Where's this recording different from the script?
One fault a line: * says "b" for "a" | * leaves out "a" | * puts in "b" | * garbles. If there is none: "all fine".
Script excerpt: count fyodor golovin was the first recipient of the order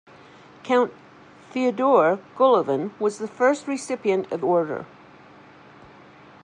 * leaves out "the"